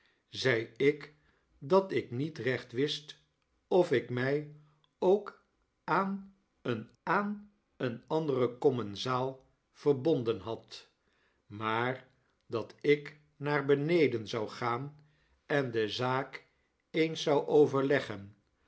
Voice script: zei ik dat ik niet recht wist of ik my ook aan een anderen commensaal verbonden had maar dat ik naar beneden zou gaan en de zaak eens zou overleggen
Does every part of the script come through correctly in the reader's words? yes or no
no